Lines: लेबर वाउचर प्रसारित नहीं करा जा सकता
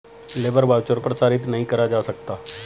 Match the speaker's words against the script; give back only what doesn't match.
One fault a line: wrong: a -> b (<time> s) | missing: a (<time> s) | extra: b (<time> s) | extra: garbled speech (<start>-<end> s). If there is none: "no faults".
no faults